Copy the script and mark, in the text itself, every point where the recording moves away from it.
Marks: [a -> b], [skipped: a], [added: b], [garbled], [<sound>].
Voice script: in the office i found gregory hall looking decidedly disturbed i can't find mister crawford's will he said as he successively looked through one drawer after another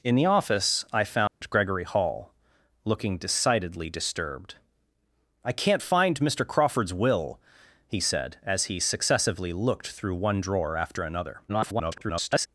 in the office i found [dropout] gregory hall looking decidedly disturbed i can't find mister crawford's will he said as he successively looked through one drawer after another [garbled]